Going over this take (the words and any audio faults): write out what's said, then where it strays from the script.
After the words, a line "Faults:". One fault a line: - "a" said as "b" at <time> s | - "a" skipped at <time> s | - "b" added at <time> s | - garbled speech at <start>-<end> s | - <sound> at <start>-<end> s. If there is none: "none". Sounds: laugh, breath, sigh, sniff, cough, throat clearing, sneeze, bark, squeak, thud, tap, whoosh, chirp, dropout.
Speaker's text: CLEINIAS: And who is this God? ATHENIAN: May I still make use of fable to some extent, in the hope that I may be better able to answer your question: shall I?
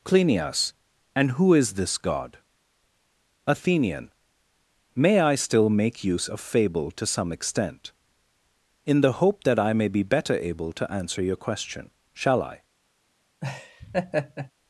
CLEINIAS: And who is this God? ATHENIAN: May I still make use of fable to some extent, in the hope that I may be better able to answer your question: shall I?
Faults:
- laugh at 13.4-14.5 s